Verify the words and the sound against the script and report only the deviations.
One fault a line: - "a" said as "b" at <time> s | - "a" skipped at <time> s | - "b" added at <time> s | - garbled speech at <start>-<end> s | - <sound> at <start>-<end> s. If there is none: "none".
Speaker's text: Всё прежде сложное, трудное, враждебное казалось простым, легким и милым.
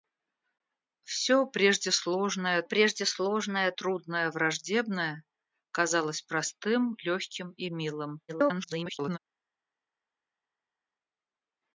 - "прежде сложное" added at 2.6 s
- garbled speech at 8.3-9.2 s